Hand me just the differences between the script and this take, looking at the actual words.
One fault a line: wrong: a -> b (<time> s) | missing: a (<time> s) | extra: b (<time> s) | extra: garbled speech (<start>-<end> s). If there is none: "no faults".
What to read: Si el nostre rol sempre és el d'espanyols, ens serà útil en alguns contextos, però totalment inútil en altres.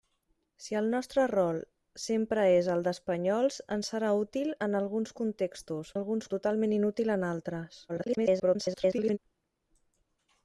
wrong: però -> alguns (6.0 s)
extra: garbled speech (7.9-9.2 s)